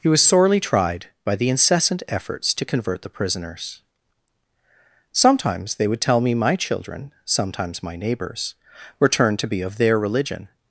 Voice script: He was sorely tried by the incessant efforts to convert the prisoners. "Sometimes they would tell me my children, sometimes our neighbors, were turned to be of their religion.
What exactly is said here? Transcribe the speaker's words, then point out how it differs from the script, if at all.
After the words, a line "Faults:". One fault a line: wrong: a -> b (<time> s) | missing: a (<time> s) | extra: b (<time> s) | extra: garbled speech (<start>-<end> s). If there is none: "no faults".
He was sorely tried by the incessant efforts to convert the prisoners. "Sometimes they would tell me my children, sometimes my neighbors, were turned to be of their religion.
Faults:
wrong: our -> my (7.8 s)